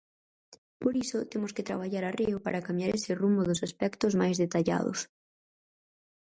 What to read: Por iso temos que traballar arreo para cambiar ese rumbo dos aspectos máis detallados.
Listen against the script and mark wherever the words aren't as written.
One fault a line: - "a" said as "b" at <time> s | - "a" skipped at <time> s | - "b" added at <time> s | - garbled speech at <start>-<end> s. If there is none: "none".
none